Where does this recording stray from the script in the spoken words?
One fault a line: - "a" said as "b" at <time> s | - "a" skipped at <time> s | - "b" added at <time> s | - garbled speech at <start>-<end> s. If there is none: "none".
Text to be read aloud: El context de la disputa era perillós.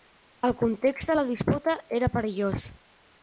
none